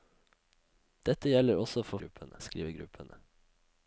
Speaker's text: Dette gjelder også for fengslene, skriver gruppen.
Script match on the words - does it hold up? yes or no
no